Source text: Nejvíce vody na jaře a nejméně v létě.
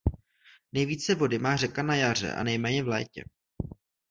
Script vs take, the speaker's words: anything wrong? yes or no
yes